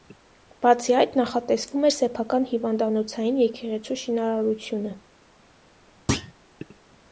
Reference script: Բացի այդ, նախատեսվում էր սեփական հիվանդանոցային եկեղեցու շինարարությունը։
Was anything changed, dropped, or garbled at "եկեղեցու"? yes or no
no